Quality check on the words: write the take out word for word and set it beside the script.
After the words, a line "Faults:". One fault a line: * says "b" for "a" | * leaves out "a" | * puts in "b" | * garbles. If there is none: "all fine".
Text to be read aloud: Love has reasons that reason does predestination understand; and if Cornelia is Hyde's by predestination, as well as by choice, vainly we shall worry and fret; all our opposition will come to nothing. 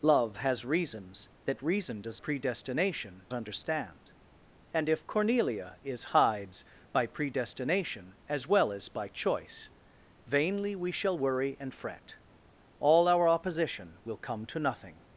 Love has reasons that reason does predestination understand; and if Cornelia is Hyde's by predestination, as well as by choice, vainly we shall worry and fret; all our opposition will come to nothing.
Faults:
all fine